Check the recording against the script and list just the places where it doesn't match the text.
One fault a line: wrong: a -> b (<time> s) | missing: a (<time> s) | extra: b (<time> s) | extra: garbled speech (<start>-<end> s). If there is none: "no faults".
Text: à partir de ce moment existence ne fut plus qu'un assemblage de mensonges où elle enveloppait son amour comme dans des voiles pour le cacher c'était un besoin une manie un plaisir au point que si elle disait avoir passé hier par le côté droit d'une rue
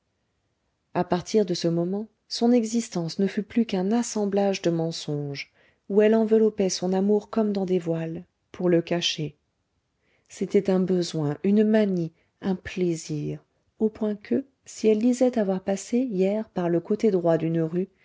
extra: son (2.3 s)